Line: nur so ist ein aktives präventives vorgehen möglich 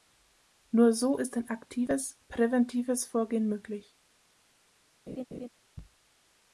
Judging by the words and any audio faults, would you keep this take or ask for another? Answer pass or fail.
fail